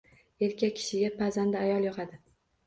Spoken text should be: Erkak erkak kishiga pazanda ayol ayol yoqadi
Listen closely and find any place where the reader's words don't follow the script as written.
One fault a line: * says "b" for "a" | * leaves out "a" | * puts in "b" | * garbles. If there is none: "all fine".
* leaves out "erkak"
* leaves out "ayol"